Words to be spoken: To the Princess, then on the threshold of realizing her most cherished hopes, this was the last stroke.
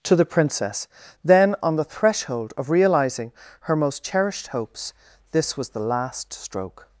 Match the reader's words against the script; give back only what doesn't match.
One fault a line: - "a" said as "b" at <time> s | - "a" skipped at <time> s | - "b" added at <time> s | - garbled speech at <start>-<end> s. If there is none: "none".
none